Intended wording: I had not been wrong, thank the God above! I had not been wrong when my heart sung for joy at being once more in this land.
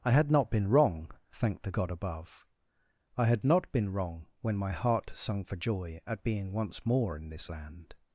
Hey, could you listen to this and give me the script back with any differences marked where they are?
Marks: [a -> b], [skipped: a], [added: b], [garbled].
I had not been wrong, thank the God above! I had not been wrong when my heart sung for joy at being once more in this land.